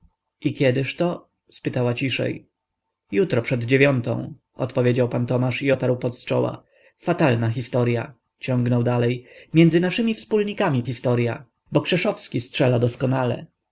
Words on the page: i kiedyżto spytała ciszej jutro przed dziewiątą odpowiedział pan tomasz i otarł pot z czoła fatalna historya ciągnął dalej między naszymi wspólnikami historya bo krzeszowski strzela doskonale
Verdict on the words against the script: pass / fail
pass